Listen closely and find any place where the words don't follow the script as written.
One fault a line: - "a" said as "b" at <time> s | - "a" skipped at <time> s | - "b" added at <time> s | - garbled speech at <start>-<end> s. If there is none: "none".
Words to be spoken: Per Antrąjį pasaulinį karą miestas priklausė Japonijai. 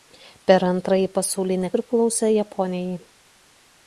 - "karą miestas" skipped at 1.7 s